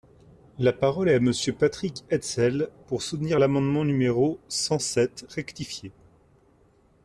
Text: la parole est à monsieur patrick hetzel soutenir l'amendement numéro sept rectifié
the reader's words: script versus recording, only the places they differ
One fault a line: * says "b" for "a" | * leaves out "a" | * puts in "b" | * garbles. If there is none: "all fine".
* puts in "pour"
* puts in "cent"